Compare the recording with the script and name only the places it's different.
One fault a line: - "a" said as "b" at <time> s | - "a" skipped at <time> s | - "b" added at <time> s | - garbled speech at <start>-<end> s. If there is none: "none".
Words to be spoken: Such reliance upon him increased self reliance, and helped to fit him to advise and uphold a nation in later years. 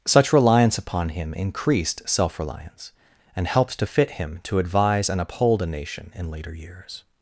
none